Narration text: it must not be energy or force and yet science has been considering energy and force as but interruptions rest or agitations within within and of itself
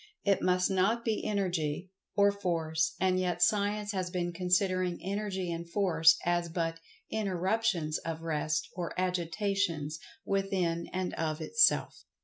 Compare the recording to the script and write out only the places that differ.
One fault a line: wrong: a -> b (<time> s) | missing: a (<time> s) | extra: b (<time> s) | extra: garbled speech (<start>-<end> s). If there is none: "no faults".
extra: of (8.0 s)
missing: within (10.9 s)